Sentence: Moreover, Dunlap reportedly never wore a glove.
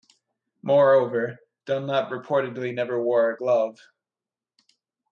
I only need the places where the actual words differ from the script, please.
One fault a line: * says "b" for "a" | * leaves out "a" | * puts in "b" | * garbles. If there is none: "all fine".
all fine